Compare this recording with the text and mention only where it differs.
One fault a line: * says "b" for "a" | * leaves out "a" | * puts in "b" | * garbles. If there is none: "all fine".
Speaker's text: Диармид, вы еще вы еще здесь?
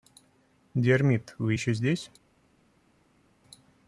* leaves out "вы еще"